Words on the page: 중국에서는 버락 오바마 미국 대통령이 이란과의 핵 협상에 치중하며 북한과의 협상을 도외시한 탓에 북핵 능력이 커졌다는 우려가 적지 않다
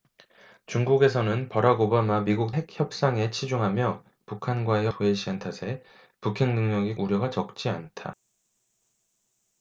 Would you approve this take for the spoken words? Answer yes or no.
no